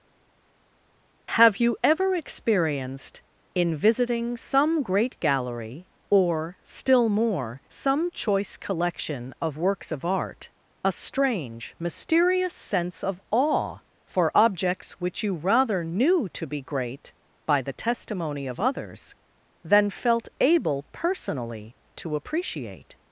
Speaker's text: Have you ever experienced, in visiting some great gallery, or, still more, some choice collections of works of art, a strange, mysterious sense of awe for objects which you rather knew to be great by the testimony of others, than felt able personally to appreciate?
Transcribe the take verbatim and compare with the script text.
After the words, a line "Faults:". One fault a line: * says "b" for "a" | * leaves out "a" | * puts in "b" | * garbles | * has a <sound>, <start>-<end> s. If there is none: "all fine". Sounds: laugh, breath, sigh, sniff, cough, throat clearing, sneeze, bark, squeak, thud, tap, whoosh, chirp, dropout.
Have you ever experienced, in visiting some great gallery, or, still more, some choice collection of works of art, a strange, mysterious sense of awe for objects which you rather knew to be great by the testimony of others, than felt able personally to appreciate?
Faults:
* says "collection" for "collections"